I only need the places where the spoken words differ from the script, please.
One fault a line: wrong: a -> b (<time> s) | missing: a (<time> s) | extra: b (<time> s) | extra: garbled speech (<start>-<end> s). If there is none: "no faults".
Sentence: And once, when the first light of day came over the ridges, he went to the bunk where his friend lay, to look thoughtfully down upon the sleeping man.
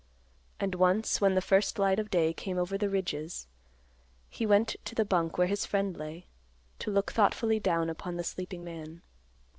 no faults